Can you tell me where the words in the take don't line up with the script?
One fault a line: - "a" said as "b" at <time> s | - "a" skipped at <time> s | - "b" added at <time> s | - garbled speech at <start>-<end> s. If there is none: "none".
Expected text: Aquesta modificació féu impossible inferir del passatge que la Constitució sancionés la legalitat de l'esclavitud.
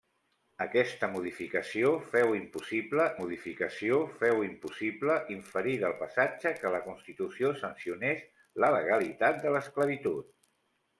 - "modificació féu impossible" added at 3.2 s